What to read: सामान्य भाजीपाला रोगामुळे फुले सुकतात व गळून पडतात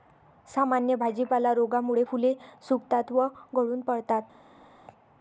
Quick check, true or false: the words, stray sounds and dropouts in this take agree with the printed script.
true